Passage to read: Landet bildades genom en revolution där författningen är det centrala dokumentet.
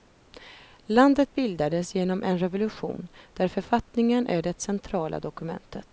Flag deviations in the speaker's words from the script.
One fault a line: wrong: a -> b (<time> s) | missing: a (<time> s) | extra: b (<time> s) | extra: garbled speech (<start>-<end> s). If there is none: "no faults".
no faults